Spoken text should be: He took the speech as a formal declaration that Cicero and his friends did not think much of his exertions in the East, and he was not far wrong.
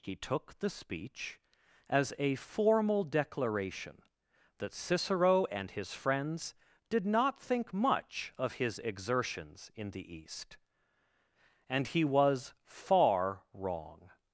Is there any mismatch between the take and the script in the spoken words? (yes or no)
yes